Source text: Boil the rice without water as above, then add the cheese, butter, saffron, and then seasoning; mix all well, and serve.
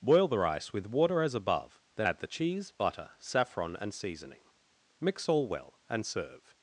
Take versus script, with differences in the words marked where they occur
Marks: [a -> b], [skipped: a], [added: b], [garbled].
Boil the rice [without -> with] water as above, then add the cheese, butter, saffron, and [skipped: then] seasoning; mix all well, and serve.